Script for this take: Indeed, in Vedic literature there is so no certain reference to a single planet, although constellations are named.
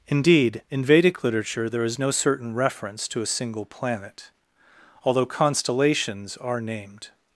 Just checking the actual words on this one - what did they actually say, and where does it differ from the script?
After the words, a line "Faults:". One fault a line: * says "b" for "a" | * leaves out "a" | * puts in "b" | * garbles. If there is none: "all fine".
Indeed, in Vedic literature there is no certain reference to a single planet, although constellations are named.
Faults:
* leaves out "so"